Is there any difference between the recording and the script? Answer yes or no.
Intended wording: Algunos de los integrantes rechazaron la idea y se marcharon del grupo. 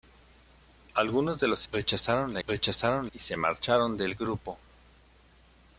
yes